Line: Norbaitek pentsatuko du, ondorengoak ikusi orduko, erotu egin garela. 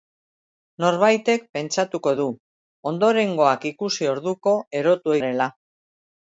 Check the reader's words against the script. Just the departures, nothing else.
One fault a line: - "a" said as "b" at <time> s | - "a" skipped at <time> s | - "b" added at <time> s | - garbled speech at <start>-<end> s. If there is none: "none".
- "egin" skipped at 5.2 s